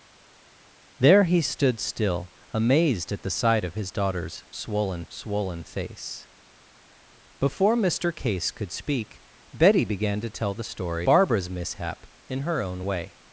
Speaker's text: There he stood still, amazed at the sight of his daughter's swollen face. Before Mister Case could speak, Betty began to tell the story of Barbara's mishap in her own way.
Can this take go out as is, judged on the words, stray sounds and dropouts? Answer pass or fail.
fail